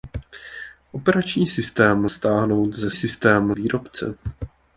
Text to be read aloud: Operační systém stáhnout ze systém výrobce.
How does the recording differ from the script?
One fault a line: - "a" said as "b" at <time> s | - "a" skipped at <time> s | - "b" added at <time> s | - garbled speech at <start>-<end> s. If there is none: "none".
none